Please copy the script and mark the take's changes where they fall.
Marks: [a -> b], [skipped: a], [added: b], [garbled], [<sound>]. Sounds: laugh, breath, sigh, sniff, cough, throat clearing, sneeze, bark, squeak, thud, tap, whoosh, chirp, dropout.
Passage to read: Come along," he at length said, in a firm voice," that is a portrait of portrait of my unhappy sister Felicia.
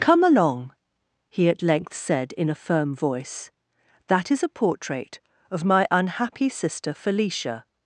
Come along," he at length said, in a firm voice," that is a portrait of [skipped: portrait of] my unhappy sister Felicia.